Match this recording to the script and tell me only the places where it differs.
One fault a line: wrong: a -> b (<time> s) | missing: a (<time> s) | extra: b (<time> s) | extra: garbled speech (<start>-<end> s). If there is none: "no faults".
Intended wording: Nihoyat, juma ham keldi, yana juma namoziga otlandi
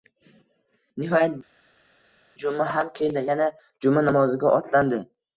no faults